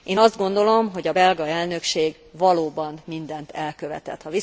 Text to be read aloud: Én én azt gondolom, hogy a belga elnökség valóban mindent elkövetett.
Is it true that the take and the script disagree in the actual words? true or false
true